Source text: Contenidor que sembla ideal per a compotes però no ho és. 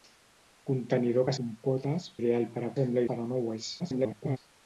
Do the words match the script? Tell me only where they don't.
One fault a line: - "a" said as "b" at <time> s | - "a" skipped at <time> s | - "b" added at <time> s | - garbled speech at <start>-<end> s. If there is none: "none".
- "sembla" said as "compotes" at 1.4 s
- "compotes" said as "sembla" at 2.8 s
- garbled speech at 3.8-4.4 s